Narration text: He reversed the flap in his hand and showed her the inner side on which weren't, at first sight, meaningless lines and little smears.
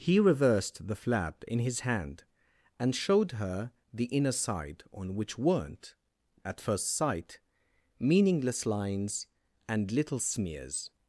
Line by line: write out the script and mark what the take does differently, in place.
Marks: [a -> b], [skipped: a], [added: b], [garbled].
He reversed the flap in his hand and showed her the inner side on which weren't, at first sight, meaningless lines and little smears.